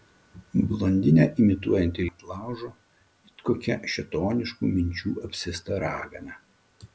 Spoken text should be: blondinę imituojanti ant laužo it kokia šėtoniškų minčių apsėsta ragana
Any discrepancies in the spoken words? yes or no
no